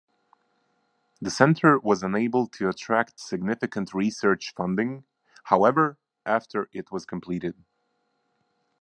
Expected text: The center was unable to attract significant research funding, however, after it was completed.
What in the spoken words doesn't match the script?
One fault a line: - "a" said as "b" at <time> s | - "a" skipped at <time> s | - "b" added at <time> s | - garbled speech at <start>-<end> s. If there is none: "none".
none